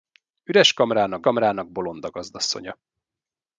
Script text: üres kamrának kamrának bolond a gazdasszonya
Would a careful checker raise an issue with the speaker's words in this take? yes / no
no